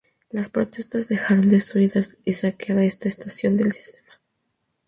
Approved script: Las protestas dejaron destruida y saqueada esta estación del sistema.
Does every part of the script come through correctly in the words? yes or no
yes